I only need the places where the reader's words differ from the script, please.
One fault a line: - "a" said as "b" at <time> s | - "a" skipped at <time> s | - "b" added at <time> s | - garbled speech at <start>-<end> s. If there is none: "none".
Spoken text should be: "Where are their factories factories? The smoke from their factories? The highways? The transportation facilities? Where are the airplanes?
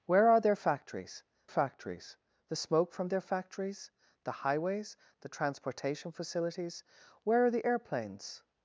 none